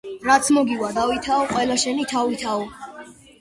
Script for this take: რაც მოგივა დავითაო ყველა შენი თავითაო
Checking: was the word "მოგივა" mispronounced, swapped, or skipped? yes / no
no